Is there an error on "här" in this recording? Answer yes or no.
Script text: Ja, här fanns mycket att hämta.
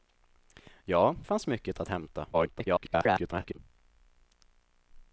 yes